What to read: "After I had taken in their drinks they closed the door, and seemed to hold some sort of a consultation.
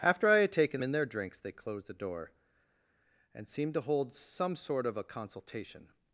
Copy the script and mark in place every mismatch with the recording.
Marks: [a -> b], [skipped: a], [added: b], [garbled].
"After I had taken in their drinks they closed the door, and seemed to hold some sort of a consultation.